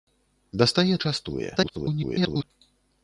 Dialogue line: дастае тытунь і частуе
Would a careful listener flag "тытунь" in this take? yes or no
yes